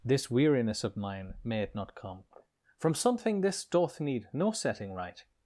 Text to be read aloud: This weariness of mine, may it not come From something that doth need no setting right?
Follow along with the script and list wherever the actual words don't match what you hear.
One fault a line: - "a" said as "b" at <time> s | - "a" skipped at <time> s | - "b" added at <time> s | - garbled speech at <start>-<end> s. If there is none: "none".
- "that" said as "this" at 3.4 s